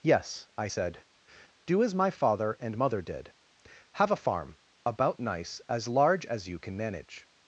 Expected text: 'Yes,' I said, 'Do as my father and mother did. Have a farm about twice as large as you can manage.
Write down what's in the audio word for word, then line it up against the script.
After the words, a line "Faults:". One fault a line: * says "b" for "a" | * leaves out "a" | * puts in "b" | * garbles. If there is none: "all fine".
'Yes,' I said, 'Do as my father and mother did. Have a farm about nice as large as you can manage.
Faults:
* says "nice" for "twice"